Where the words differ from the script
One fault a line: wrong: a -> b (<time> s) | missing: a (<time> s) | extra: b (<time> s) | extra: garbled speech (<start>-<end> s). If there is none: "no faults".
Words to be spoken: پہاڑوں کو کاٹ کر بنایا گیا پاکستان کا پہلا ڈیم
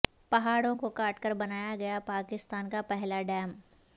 no faults